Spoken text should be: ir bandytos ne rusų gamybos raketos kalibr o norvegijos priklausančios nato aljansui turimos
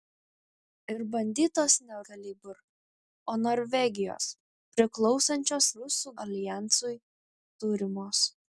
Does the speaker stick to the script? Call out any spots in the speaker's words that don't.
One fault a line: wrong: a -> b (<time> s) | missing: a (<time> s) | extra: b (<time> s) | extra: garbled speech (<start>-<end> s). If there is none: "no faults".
missing: rusų gamybos raketos (2.0 s)
wrong: nato -> rusų (5.8 s)